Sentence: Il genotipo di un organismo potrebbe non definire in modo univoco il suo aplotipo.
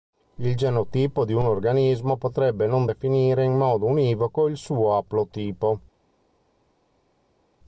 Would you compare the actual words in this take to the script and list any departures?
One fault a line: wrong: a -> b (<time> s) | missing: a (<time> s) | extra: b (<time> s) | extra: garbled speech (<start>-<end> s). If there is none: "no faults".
no faults